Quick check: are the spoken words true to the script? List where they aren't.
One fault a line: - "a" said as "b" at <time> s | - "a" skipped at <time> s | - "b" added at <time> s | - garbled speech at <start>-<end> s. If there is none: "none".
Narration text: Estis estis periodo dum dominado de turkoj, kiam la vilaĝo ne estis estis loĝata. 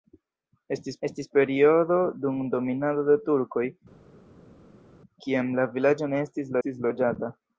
none